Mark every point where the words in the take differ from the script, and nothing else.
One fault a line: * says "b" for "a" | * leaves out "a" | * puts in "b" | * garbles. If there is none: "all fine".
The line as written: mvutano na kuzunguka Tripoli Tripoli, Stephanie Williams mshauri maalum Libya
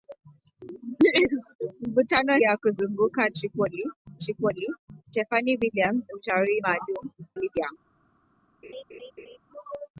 all fine